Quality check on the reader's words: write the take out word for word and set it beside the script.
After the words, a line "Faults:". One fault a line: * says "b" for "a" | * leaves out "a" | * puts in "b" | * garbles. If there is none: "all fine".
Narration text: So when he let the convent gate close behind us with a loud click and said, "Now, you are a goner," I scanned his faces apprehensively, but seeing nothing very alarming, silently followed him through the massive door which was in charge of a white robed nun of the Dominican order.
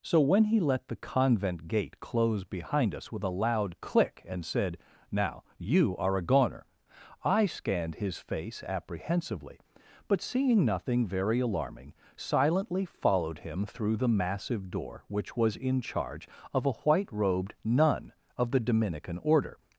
So when he let the convent gate close behind us with a loud click and said, "Now, you are a goner," I scanned his face apprehensively, but seeing nothing very alarming, silently followed him through the massive door which was in charge of a white robed nun of the Dominican order.
Faults:
* says "face" for "faces"